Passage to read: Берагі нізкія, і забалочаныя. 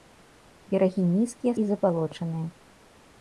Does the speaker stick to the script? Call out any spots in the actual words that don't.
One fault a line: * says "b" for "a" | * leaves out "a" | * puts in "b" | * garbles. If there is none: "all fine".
all fine